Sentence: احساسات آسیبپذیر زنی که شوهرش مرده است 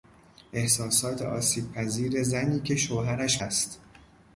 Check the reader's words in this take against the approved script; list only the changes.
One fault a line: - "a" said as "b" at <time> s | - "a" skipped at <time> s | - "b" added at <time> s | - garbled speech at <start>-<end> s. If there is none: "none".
- "مرده" skipped at 3.4 s